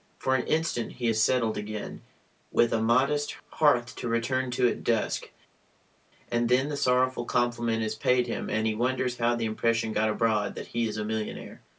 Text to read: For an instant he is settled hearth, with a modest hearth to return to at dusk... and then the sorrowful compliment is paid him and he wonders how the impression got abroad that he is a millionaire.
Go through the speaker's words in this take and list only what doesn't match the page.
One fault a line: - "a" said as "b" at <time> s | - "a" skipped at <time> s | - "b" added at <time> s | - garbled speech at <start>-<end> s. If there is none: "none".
- "hearth" said as "again" at 1.6 s